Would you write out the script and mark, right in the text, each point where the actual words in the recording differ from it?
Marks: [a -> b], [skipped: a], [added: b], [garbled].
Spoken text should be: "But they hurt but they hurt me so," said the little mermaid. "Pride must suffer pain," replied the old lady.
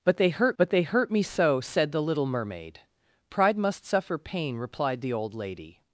"But they hurt but they hurt me so," said the little mermaid. "Pride must suffer pain," replied the old lady.